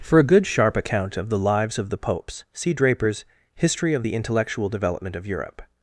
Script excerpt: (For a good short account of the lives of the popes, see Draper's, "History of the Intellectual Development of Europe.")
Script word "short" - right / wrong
wrong